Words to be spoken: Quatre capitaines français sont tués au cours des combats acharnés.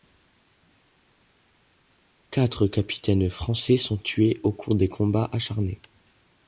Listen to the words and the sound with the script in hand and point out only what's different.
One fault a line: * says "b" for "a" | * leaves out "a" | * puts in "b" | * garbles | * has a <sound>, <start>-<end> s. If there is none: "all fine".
all fine